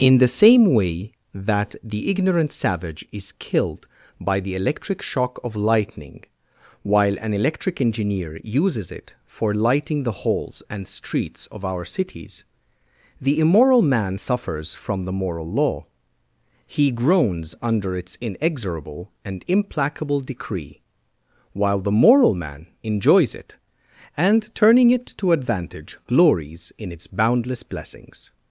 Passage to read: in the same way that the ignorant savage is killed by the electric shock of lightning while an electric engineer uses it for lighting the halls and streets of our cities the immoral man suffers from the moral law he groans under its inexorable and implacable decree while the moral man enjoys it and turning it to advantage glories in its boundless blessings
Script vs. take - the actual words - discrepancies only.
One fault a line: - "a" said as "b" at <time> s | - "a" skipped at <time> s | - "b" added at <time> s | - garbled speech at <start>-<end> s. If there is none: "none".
none